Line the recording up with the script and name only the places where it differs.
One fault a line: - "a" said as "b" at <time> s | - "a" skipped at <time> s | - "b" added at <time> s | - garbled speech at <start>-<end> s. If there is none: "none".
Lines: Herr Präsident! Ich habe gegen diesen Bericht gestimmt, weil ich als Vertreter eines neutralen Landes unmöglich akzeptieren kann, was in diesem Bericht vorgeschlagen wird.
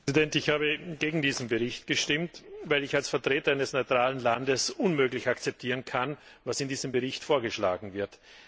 none